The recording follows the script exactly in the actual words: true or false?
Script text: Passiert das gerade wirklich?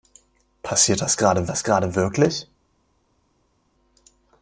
false